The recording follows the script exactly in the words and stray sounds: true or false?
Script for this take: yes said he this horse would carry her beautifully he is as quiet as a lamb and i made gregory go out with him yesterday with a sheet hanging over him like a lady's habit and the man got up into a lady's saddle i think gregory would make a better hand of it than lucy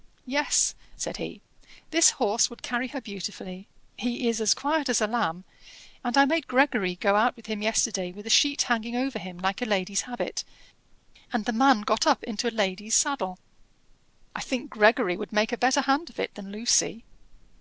true